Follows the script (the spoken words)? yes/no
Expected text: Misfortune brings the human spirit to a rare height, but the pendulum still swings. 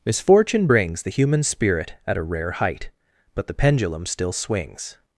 no